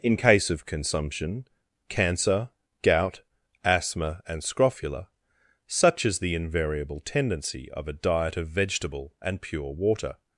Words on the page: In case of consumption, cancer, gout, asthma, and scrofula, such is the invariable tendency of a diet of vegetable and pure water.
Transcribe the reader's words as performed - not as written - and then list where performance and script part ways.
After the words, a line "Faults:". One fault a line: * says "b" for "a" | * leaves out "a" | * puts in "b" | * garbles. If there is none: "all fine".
In case of consumption, cancer, gout, asthma, and scrofula, such is the invariable tendency of a diet of vegetable and pure water.
Faults:
all fine